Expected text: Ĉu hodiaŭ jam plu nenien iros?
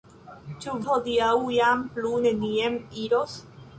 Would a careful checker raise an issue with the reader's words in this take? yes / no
no